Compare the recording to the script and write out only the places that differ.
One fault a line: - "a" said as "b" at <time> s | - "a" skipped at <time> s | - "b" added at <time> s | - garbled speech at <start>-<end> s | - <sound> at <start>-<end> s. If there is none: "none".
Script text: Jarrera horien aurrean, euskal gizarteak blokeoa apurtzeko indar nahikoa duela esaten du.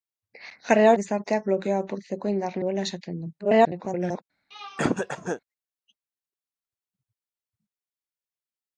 - "horien aurrean euskal" skipped at 0.9 s
- "nahikoa" skipped at 2.6 s
- garbled speech at 3.4-4.2 s
- throat clearing at 4.5-5.4 s